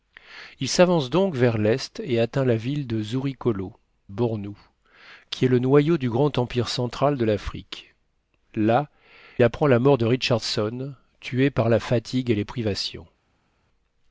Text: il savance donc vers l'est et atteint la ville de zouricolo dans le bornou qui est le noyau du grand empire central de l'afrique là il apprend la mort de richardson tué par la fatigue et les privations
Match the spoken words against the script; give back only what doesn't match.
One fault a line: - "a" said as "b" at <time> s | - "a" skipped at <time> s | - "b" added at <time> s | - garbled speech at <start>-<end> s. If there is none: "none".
- "dans le" skipped at 3.8 s
- "il" skipped at 8.9 s